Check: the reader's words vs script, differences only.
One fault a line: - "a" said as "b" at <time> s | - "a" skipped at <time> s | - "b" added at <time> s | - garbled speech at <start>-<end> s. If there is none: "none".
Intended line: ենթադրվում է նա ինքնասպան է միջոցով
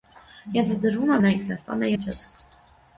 none